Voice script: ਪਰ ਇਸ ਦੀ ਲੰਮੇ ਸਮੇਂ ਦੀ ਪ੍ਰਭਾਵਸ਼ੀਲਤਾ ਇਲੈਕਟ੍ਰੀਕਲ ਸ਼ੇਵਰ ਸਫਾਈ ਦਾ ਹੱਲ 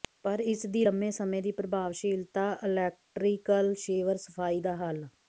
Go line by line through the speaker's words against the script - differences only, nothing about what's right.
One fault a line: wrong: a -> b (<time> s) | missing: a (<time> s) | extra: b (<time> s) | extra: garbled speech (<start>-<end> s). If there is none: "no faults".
no faults